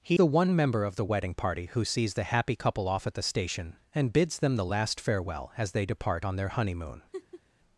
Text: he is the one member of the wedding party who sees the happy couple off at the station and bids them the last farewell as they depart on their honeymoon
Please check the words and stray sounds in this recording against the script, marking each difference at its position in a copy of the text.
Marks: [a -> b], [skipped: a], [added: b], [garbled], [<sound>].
he [skipped: is] the one member of the wedding party who sees the happy couple off at the station and bids them the last farewell as they depart on their honeymoon [laugh]